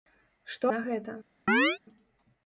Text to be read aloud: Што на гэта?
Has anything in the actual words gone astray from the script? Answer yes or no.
no